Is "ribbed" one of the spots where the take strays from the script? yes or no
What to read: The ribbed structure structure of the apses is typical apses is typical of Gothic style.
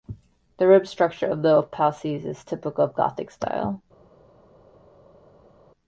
no